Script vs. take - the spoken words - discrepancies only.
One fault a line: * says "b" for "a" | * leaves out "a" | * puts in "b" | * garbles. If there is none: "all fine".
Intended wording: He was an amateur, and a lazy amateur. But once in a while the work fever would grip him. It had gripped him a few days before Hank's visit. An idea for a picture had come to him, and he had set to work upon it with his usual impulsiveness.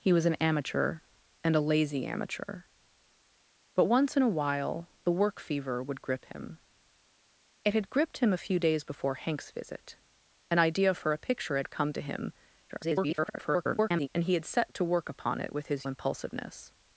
* garbles
* leaves out "usual"